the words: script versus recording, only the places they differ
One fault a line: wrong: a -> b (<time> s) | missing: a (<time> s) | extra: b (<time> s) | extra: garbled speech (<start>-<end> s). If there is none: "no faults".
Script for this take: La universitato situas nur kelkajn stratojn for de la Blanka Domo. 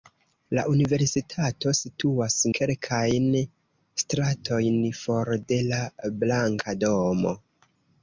missing: nur (2.4 s)